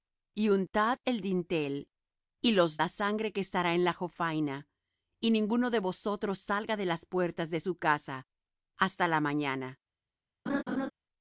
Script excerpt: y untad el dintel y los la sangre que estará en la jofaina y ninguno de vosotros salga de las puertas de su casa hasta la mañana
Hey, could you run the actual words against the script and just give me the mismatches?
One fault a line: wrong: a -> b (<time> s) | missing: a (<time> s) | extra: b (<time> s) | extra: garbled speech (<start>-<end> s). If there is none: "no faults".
no faults